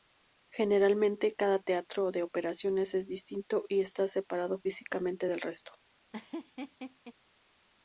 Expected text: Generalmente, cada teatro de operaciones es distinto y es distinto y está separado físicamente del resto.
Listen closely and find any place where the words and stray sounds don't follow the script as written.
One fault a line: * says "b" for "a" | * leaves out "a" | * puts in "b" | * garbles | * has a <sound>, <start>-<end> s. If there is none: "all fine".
* leaves out "es distinto y"
* has a laugh, 6.1-7.1 s